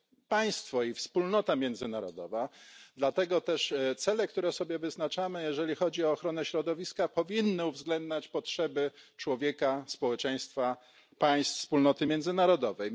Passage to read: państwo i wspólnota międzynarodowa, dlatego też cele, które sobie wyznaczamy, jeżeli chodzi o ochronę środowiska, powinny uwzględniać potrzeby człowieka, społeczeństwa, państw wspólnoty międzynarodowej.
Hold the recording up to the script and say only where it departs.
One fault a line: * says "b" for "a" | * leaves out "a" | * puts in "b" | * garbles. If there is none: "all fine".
all fine